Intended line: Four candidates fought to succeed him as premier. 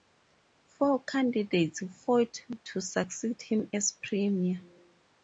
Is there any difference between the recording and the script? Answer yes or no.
no